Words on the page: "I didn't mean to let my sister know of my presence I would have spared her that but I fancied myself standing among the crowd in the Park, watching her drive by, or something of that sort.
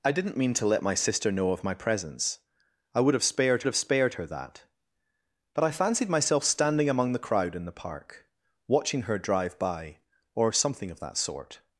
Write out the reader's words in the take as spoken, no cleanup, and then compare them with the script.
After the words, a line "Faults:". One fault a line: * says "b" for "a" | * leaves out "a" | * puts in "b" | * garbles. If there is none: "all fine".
"I didn't mean to let my sister know of my presence I would have spared have spared her that but I fancied myself standing among the crowd in the Park, watching her drive by, or something of that sort.
Faults:
* puts in "have spared"